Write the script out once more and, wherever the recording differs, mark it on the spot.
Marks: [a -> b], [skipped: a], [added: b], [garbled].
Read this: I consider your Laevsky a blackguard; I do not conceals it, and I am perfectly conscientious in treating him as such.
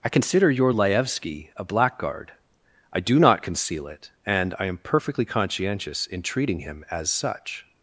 I consider your Laevsky a blackguard; I do not [conceals -> conceal] it, and I am perfectly conscientious in treating him as such.